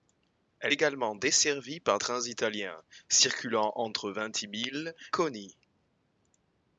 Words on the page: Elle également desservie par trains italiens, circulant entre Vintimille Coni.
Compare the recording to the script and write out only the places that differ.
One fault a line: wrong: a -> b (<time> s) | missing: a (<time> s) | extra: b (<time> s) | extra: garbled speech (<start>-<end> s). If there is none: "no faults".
no faults